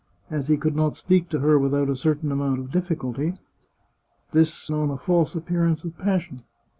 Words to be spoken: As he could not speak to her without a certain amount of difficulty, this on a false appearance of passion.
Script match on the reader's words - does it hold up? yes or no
yes